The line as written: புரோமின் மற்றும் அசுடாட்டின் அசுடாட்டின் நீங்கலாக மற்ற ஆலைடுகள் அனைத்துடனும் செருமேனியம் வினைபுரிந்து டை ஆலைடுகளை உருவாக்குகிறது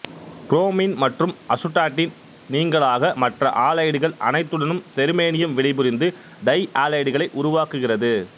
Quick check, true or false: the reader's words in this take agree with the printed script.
false